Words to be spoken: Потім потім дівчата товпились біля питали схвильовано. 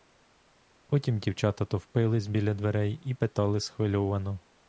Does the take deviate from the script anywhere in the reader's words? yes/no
yes